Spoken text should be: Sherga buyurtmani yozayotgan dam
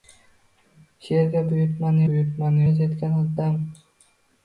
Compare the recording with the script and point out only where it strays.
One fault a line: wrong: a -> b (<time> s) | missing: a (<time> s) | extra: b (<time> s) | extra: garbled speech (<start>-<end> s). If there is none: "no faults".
extra: buyurtmani (2.1 s)